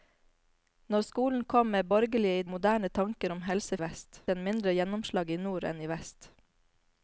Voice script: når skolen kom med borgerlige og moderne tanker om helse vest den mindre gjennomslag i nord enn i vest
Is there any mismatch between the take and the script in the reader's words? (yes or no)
no